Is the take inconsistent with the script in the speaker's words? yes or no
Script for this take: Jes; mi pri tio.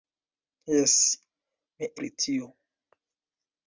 no